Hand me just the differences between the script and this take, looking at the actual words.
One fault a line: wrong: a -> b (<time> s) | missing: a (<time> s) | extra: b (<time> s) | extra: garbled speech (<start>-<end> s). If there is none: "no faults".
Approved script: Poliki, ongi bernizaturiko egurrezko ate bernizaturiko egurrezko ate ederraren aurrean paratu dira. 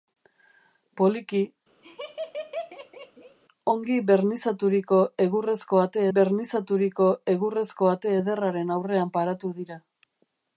no faults